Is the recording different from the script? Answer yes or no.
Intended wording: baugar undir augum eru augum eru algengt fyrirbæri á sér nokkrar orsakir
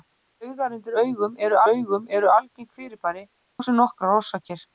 no